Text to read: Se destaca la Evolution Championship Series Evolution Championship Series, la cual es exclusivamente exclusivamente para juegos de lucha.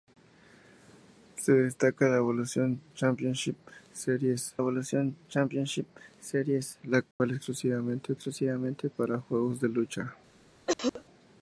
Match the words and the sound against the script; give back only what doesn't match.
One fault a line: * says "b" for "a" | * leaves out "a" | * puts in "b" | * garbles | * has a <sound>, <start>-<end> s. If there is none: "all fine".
* has a dropout, 7.1-7.2 s
* has a cough, 10.7-11.0 s